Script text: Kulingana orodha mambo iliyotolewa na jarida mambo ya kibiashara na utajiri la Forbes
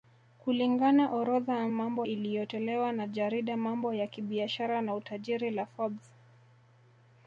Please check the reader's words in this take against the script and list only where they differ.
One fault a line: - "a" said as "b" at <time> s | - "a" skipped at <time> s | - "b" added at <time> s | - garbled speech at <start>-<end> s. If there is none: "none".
none